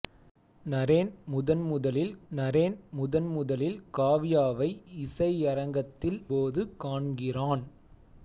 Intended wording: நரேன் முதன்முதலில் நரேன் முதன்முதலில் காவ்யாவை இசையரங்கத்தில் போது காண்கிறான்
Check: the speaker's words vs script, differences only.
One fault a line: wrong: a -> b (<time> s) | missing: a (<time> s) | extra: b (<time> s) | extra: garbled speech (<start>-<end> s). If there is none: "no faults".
no faults